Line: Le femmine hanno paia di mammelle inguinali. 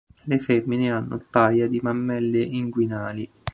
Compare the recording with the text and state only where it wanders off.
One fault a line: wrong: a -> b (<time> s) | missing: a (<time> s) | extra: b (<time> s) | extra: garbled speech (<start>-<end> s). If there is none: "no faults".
no faults